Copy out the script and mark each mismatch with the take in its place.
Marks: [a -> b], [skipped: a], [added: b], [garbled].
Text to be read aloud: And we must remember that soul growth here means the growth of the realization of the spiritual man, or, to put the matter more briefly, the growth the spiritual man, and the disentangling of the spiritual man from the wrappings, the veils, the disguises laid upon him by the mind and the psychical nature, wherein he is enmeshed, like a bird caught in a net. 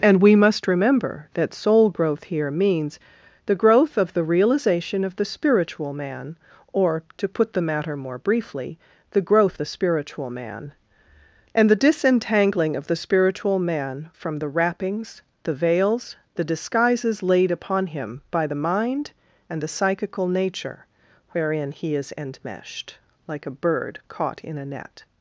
And we must remember that soul growth here means the growth of the realization of the spiritual man, or, to put the matter more briefly, the growth the spiritual man, and the disentangling of the spiritual man from the wrappings, the veils, the disguises laid upon him by the mind and the psychical nature, wherein he is enmeshed, like a bird caught in a net.